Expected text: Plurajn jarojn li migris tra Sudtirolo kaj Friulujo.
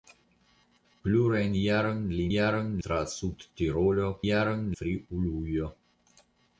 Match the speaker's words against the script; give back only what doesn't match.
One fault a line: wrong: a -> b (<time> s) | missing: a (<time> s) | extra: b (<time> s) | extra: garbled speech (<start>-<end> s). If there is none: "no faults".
wrong: migris -> jarojn (2.3 s)
wrong: kaj -> jarojn (4.3 s)